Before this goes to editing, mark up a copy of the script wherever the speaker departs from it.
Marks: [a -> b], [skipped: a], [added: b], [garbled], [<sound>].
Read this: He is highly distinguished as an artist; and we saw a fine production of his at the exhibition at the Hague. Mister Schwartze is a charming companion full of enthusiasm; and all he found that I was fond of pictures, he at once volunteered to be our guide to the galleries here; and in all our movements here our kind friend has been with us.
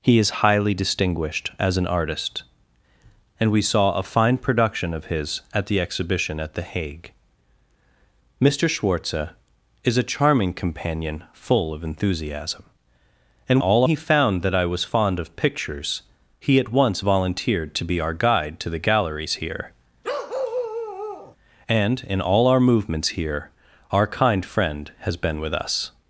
He is highly distinguished as an artist; and we saw a fine production of his at the exhibition at the Hague. Mister Schwartze is a charming companion full of enthusiasm; and all he found that I was fond of pictures, he at once volunteered to be our guide to the galleries here; [bark] and in all our movements here our kind friend has been with us.